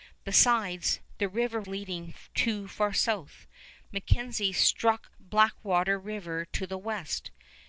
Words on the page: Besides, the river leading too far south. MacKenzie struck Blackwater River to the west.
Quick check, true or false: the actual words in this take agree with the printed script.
true